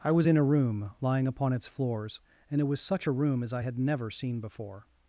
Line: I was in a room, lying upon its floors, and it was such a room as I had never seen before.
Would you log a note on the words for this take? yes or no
no